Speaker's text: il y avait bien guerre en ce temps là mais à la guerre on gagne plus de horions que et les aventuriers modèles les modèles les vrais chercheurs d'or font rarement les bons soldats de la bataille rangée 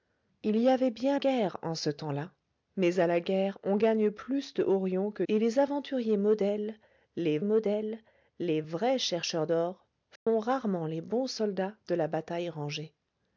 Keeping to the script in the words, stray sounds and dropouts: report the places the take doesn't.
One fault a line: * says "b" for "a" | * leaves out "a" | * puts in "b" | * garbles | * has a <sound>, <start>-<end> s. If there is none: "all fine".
* has a dropout, 10.2-10.3 s